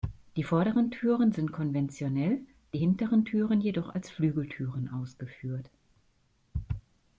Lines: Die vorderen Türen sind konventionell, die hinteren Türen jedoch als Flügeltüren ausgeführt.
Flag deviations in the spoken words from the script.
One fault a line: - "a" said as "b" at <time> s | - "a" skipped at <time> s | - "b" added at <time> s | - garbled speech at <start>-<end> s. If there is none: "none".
none